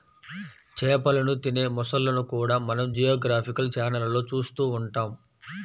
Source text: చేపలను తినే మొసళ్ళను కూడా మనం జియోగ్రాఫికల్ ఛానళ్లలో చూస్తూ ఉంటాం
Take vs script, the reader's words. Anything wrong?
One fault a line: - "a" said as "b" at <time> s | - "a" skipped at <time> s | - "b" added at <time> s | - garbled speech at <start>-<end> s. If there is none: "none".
none